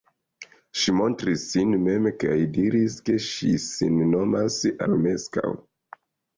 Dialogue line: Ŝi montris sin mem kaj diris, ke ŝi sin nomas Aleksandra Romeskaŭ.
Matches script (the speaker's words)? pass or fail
fail